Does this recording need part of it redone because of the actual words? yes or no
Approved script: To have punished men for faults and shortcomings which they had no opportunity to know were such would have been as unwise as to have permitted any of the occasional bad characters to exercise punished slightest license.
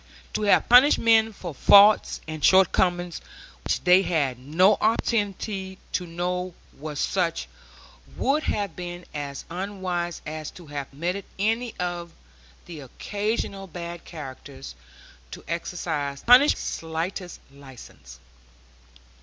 no